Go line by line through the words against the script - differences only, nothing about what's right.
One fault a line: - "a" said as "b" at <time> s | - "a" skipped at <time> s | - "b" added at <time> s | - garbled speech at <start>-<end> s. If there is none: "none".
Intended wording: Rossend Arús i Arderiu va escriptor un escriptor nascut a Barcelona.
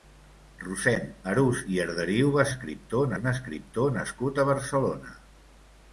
none